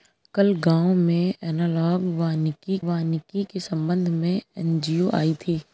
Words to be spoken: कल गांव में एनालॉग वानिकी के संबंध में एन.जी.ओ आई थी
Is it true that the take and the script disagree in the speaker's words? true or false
true